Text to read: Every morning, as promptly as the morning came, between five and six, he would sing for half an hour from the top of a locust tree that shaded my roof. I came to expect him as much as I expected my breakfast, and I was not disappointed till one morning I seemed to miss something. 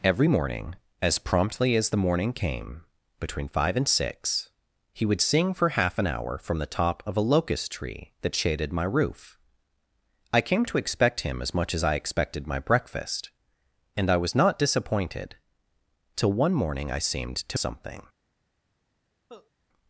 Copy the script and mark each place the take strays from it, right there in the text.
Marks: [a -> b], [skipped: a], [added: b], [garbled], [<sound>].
Every morning, as promptly as the morning came, between five and six, he would sing for half an hour from the top of a locust tree that shaded my roof. I came to expect him as much as I expected my breakfast, and I was not disappointed till one morning I seemed to [skipped: miss] something. [cough]